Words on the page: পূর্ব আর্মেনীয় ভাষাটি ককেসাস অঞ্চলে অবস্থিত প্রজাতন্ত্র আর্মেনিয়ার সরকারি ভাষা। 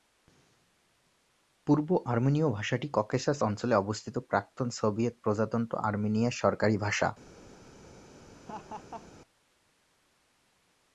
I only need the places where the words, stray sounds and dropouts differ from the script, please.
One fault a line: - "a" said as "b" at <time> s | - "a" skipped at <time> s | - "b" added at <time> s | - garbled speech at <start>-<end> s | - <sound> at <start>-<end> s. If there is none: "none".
- "প্রাক্তন সোভিয়েত" added at 4.3 s
- laugh at 8.3-9.1 s